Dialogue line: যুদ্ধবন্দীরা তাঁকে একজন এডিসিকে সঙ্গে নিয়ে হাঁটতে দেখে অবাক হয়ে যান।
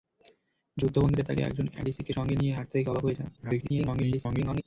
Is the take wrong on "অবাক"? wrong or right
right